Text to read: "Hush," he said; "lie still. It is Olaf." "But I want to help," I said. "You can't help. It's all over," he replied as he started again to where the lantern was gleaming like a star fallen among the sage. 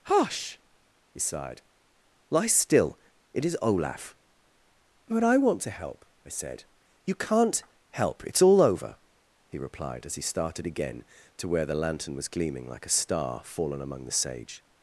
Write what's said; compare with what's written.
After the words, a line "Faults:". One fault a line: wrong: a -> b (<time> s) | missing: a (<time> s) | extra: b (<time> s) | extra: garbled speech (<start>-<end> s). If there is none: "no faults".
"Hush," he sighed; "lie still. It is Olaf." "But I want to help," I said. "You can't help. It's all over," he replied as he started again to where the lantern was gleaming like a star fallen among the sage.
Faults:
wrong: said -> sighed (1.2 s)